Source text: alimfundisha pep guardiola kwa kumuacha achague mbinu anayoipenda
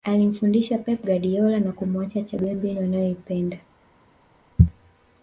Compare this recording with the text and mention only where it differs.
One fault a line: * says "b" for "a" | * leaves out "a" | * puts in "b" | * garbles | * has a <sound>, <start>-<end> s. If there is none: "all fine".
* says "na" for "kwa"